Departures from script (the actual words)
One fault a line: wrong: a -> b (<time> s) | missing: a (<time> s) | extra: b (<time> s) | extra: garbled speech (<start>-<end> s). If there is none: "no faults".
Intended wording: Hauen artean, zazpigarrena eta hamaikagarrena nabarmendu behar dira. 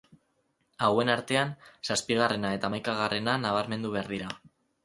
no faults